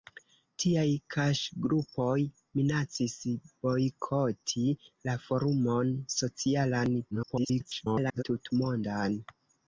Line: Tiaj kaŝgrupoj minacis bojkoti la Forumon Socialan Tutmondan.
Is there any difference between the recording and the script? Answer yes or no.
yes